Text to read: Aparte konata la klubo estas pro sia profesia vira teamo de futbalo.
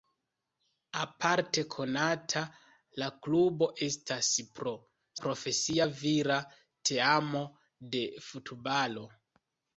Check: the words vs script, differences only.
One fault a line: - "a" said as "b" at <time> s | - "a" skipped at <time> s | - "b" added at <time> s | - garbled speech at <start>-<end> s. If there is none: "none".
- "sia" skipped at 4.7 s